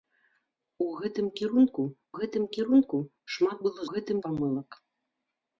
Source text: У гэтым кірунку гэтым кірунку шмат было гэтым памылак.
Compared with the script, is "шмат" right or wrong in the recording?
right